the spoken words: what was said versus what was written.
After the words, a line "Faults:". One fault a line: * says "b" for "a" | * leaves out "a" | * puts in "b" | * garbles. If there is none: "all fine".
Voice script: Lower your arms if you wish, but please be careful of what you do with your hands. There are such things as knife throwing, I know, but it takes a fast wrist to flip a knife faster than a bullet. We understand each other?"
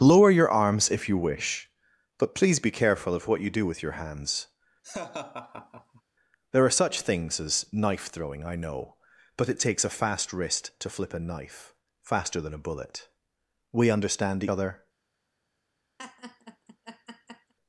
Lower your arms if you wish, but please be careful of what you do with your hands. There are such things as knife throwing, I know, but it takes a fast wrist to flip a knife faster than a bullet. We understand other?"
Faults:
* leaves out "each"